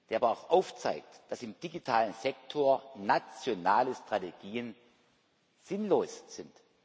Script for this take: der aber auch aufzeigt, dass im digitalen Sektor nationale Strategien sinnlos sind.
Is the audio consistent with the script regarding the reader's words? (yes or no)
yes